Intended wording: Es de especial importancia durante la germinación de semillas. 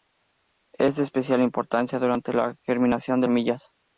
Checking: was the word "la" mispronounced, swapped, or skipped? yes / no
no